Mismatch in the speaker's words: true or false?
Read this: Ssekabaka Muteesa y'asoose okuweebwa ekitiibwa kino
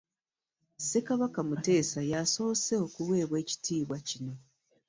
false